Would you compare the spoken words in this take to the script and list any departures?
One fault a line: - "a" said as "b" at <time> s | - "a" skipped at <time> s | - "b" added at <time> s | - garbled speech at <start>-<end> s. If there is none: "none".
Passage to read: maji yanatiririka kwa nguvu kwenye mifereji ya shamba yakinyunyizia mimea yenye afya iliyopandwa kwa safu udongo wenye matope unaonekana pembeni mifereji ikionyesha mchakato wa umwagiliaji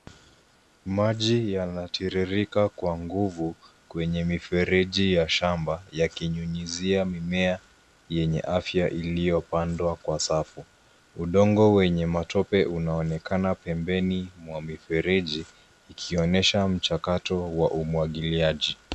- "mwa" added at 14.4 s